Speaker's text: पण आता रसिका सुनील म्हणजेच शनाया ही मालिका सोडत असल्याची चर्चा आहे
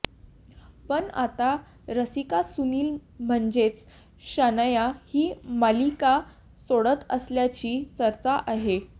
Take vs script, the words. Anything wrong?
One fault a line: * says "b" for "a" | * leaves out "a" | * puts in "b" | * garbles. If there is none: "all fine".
all fine